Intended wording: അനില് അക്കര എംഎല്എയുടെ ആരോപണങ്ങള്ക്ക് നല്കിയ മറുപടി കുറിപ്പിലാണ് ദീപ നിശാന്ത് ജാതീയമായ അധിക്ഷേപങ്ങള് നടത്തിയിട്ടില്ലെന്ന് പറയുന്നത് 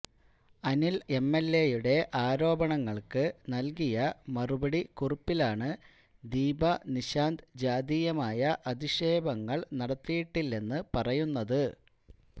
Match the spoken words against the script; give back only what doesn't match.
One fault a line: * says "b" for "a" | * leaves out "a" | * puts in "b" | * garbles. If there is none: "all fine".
* leaves out "അക്കര"